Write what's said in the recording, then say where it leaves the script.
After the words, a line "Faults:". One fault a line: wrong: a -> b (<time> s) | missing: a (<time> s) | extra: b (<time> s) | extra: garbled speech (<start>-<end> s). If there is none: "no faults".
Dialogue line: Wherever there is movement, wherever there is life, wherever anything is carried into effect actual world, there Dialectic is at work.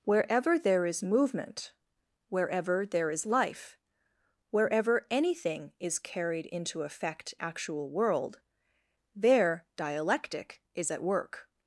Wherever there is movement, wherever there is life, wherever anything is carried into effect actual world, there Dialectic is at work.
Faults:
no faults